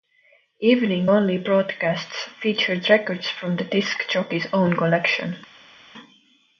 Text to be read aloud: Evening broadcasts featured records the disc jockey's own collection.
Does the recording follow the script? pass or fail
fail